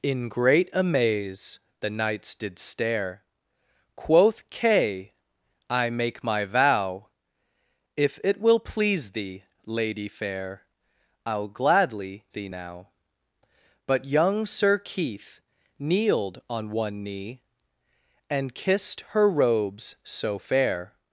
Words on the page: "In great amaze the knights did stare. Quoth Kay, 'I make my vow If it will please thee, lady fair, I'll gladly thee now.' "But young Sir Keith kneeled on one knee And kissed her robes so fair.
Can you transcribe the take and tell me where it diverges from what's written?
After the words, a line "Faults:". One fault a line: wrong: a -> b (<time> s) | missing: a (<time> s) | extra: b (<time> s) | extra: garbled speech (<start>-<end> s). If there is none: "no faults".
"In great amaze the knights did stare. Quoth Kay, 'I make my vow If it will please thee, lady fair, I'll gladly thee now.' "But young Sir Keith kneeled on one knee And kissed her robes so fair.
Faults:
no faults